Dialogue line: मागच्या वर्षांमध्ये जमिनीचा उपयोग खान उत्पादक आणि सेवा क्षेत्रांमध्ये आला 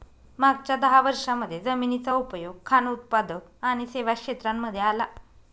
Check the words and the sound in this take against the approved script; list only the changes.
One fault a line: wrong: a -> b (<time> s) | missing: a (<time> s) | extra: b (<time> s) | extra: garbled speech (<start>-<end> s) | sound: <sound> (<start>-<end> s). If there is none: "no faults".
extra: दहा (0.8 s)